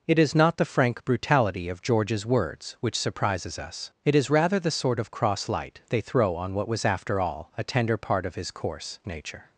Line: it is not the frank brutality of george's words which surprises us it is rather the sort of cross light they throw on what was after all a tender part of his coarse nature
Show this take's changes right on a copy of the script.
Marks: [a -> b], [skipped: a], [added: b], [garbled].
it is not the frank brutality of george's words which surprises us it is rather the sort of cross light they throw on what was after all a tender part of his coarse nature